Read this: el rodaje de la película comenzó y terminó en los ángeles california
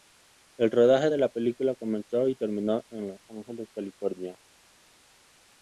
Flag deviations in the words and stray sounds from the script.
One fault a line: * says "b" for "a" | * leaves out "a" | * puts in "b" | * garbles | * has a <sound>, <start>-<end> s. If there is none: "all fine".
all fine